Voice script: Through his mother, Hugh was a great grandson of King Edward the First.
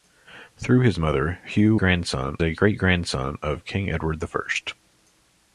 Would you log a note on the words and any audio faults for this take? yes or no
yes